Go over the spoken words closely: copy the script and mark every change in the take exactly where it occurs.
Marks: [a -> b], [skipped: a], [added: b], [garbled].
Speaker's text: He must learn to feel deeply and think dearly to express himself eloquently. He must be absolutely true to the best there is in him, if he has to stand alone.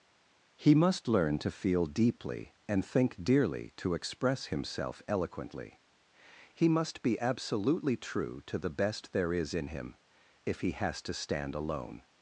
He must learn to feel deeply and think dearly to express himself eloquently. He must be absolutely true to the best there is in him, if he has to stand alone.